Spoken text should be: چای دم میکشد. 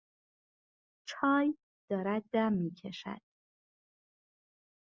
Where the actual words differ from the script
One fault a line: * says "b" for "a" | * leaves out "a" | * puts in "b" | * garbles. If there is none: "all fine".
* puts in "دارد"